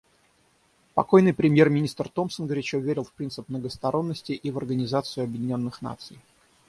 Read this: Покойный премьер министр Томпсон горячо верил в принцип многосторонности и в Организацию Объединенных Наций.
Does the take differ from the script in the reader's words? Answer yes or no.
no